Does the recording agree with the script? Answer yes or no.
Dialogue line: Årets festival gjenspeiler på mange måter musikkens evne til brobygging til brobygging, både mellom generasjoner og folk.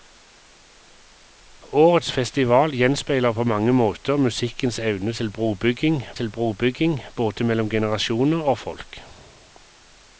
yes